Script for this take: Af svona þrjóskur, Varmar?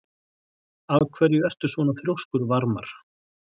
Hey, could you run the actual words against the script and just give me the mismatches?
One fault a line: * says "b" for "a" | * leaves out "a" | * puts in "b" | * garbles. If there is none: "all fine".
* puts in "hverju ertu"